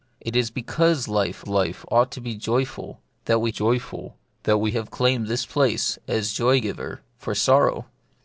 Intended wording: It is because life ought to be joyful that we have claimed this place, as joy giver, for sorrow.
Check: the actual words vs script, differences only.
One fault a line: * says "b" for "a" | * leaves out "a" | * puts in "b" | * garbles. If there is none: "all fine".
* puts in "life"
* puts in "joyful that we"